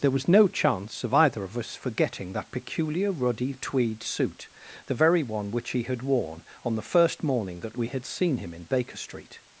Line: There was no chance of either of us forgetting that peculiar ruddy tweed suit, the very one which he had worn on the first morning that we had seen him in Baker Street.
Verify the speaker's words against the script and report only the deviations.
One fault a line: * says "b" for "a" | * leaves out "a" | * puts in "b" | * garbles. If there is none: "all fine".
all fine